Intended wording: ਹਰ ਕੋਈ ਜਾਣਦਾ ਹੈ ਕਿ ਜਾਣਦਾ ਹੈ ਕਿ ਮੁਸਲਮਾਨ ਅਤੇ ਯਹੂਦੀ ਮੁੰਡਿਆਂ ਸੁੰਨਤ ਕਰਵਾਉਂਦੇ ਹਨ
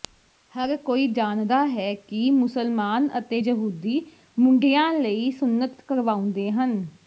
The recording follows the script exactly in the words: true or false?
false